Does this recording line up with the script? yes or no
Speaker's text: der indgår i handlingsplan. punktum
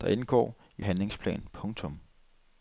yes